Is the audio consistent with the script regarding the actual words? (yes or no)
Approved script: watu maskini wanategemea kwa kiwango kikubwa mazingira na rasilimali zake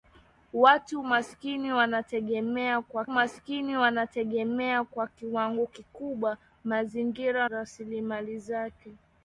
no